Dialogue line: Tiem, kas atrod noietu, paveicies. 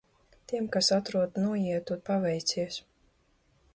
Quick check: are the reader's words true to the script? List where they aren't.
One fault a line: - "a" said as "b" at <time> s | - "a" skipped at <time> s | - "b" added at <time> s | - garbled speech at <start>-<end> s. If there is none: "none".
none